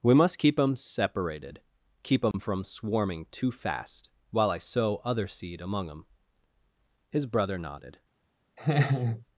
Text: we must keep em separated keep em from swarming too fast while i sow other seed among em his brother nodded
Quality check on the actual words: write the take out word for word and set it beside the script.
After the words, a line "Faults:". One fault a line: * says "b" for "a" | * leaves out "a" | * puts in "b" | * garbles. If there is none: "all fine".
we must keep em separated keep em from swarming too fast while i sow other seed among em his brother nodded
Faults:
all fine